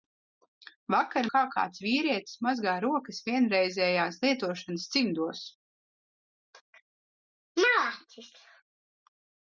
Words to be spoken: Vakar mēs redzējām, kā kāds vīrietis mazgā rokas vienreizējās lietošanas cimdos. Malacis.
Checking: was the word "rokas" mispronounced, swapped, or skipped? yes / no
no